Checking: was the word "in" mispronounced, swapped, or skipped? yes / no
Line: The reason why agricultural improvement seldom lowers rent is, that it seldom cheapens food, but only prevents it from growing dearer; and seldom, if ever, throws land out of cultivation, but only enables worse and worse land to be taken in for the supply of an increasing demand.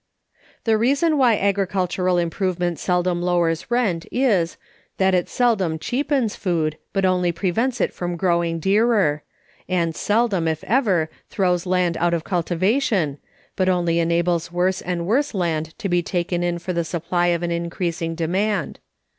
no